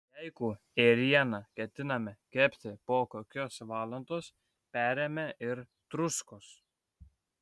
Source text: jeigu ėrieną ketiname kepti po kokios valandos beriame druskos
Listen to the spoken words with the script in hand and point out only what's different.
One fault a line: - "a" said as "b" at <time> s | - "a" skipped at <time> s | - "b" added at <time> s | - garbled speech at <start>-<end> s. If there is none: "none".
- "ir" added at 5.5 s